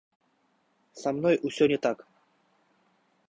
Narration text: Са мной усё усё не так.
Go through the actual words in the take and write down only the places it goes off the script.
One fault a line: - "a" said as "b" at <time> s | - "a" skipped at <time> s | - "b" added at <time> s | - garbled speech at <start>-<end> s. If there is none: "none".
- "усё" skipped at 1.7 s